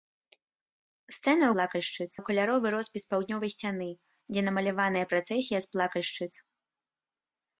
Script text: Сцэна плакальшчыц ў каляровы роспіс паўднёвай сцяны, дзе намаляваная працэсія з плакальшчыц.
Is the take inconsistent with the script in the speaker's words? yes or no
no